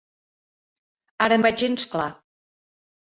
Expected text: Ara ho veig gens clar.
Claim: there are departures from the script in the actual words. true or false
false